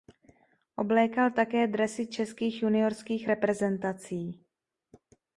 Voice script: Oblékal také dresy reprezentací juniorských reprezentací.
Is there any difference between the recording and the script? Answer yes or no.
yes